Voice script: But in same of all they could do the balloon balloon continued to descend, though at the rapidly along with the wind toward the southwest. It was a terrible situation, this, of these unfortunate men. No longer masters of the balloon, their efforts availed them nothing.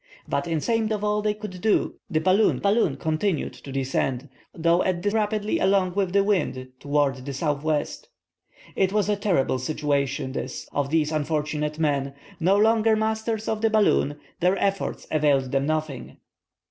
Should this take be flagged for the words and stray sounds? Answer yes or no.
no